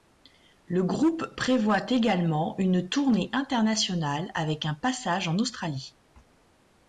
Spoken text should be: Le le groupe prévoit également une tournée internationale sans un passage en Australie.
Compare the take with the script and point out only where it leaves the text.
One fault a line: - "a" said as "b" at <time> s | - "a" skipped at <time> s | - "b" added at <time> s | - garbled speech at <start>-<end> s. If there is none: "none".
- "le" skipped at 0.8 s
- "sans" said as "avec" at 4.3 s